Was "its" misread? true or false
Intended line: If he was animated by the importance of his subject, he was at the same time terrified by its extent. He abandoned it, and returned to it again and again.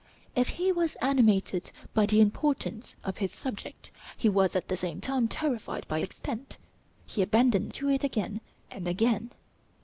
true